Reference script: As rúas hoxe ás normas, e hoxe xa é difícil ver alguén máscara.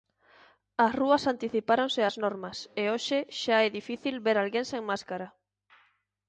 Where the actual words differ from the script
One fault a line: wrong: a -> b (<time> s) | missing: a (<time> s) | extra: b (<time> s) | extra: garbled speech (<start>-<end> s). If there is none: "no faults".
wrong: hoxe -> anticipáronse (1.3 s)
extra: sen (4.7 s)